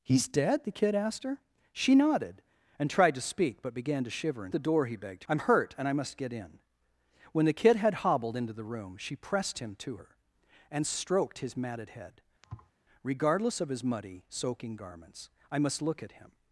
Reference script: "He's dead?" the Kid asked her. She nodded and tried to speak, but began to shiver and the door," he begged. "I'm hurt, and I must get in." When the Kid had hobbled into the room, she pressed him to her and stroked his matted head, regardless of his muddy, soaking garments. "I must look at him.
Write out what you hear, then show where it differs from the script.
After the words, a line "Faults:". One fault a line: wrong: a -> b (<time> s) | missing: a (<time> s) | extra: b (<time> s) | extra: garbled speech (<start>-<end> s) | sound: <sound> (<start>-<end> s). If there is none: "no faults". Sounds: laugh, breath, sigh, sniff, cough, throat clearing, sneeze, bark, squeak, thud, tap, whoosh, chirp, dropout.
"He's dead?" the Kid asked her. She nodded and tried to speak, but began to shiver and the door," he begged. "I'm hurt, and I must get in." When the Kid had hobbled into the room, she pressed him to her and stroked his matted head, regardless of his muddy, soaking garments. "I must look at him.
Faults:
sound: thud (12.4-12.7 s)